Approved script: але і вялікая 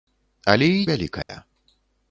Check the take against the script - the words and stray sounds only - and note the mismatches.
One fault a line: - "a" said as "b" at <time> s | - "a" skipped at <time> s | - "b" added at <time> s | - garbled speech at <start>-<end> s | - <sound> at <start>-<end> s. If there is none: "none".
- dropout at 1.2-1.3 s